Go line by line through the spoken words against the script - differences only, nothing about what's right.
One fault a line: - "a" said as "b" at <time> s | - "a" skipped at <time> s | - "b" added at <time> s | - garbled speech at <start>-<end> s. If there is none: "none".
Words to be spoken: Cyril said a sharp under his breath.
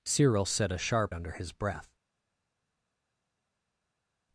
none